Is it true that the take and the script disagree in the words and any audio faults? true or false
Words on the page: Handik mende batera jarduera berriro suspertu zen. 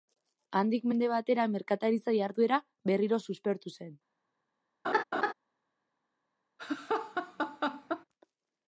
true